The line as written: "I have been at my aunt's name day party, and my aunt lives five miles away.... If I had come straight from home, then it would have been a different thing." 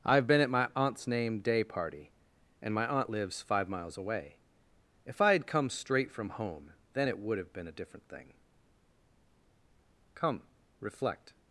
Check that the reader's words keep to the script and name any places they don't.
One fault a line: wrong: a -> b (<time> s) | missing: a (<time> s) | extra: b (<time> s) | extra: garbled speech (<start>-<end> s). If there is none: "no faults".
extra: Come reflect (10.1 s)